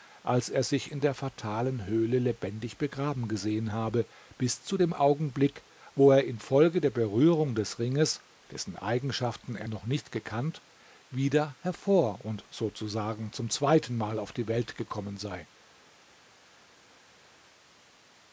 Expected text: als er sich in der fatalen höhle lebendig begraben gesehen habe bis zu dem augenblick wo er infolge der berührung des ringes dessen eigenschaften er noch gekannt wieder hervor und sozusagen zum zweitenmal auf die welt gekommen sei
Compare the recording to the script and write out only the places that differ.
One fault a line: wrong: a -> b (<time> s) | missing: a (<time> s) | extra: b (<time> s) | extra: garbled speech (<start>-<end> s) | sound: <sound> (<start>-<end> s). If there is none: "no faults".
extra: nicht (9.9 s)